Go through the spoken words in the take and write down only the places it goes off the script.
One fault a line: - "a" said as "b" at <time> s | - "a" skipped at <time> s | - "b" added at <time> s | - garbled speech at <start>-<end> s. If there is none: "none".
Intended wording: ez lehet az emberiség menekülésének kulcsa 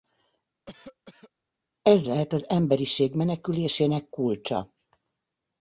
none